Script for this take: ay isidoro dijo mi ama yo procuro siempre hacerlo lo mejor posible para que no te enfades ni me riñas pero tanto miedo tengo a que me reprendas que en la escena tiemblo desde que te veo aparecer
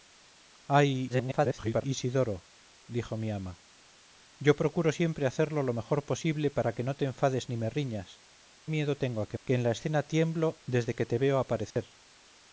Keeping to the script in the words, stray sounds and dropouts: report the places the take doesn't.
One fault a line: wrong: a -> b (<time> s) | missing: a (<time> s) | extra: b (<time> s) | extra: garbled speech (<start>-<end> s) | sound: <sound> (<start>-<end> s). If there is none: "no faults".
extra: garbled speech (1.1-1.8 s)
missing: pero tanto (8.2 s)
missing: me reprendas (9.4 s)
sound: dropout (11.7-11.8 s)